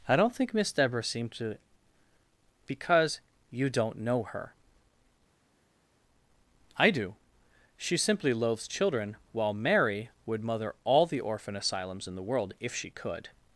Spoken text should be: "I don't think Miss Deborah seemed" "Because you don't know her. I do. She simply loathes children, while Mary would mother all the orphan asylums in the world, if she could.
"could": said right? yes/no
yes